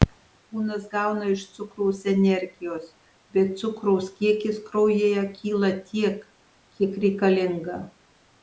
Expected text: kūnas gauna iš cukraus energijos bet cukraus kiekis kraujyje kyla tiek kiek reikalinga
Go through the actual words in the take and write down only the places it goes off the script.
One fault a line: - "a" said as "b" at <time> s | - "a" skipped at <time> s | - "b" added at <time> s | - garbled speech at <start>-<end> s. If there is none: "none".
none